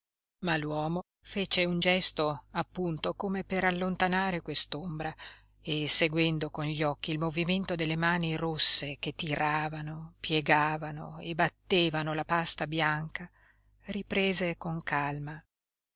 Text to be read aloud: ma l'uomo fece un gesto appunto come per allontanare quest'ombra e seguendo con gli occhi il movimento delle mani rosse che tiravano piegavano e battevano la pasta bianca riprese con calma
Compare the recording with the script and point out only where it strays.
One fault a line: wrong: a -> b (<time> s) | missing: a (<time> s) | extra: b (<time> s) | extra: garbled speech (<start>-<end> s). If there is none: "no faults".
no faults